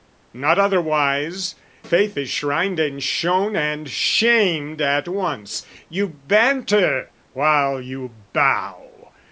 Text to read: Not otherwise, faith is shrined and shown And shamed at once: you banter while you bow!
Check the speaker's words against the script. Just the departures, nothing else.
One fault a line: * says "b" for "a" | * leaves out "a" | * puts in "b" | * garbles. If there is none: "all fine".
all fine